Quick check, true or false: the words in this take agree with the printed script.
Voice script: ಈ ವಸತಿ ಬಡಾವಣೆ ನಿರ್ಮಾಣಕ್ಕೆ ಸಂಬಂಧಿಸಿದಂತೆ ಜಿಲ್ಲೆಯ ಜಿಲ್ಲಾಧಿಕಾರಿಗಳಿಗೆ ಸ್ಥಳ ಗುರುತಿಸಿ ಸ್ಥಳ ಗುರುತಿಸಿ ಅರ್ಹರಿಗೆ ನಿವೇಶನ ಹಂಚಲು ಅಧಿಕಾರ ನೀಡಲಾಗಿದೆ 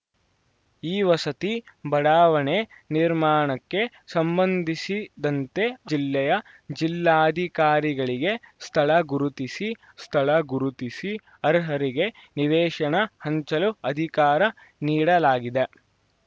true